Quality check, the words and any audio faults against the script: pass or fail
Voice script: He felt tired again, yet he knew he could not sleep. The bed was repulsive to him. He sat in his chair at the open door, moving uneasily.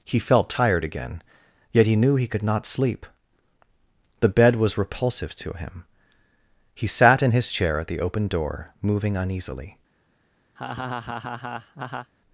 fail